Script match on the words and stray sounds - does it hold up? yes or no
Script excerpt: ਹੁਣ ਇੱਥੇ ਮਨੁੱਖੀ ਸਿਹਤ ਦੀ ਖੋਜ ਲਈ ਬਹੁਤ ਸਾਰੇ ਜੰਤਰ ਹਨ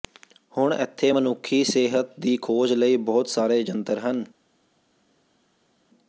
yes